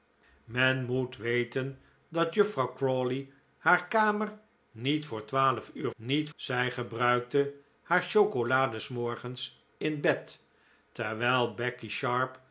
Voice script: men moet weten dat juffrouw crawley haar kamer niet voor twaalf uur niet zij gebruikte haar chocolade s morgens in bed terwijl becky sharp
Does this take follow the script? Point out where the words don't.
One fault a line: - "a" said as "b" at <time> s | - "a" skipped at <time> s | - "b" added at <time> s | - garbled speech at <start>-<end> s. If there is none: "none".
none